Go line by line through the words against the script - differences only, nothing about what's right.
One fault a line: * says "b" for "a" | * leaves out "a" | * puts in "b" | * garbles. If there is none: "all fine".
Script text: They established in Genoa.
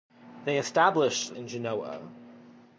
all fine